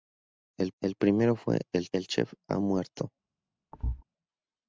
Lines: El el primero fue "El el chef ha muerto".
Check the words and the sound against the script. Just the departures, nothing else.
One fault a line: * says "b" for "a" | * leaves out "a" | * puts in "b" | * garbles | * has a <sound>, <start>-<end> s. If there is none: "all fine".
* has a thud, 3.7-4.0 s